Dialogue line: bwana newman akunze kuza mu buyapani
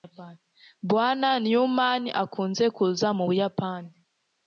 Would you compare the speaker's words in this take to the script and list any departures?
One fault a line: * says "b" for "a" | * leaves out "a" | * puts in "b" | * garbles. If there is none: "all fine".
all fine